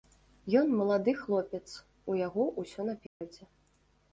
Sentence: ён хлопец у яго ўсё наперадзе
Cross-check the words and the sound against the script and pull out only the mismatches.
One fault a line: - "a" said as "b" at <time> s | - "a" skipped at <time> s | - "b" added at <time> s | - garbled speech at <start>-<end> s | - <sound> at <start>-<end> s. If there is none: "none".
- "малады" added at 0.8 s
- dropout at 3.1-3.2 s